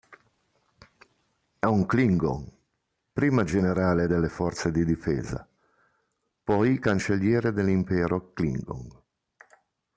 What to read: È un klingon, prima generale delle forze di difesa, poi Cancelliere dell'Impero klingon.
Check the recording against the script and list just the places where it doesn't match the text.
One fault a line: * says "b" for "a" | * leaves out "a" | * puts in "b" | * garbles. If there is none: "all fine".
all fine